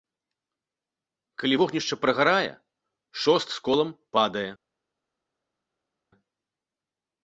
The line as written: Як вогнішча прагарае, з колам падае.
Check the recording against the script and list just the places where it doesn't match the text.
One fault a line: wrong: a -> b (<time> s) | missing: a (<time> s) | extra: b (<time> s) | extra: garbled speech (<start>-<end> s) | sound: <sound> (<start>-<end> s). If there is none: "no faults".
wrong: Як -> Калі (1.4 s)
extra: шост (3.2 s)